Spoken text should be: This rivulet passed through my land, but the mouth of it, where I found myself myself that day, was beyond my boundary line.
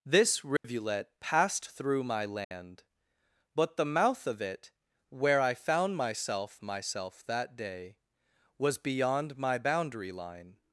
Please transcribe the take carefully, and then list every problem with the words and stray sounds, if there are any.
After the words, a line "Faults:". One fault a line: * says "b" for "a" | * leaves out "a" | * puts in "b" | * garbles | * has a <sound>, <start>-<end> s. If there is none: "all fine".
This rivulet passed through my land, but the mouth of it, where I found myself myself that day, was beyond my boundary line.
Faults:
* has a dropout, 0.6-0.6 s
* has a dropout, 2.4-2.5 s